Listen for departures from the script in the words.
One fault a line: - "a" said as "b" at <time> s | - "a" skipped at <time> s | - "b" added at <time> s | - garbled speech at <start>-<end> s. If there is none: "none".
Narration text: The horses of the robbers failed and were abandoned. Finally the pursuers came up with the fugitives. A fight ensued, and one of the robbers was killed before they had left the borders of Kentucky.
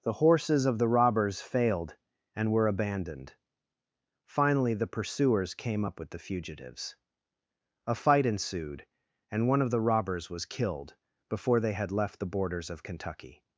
none